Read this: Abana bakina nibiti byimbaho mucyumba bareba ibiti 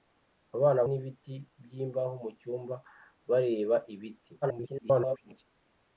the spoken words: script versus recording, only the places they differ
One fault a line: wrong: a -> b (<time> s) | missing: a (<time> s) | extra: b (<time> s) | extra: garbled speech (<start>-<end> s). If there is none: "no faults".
missing: bakina (0.8 s)
extra: garbled speech (4.4-5.4 s)